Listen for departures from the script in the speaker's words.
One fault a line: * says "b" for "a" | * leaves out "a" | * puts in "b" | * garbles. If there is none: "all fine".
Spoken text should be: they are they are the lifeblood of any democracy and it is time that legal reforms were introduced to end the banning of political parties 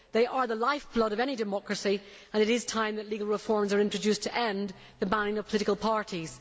* leaves out "they are"